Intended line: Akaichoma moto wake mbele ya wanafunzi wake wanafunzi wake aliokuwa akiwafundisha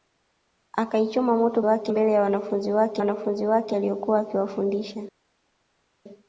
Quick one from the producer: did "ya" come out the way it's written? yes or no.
yes